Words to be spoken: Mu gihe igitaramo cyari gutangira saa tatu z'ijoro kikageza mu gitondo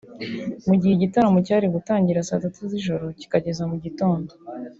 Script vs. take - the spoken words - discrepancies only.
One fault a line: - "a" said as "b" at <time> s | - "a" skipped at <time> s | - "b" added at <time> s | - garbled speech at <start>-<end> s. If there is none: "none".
none